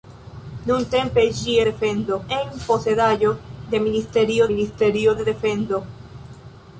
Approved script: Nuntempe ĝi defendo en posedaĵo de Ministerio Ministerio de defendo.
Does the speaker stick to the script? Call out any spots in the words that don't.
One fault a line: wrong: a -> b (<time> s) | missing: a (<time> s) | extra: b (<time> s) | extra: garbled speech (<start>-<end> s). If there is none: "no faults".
no faults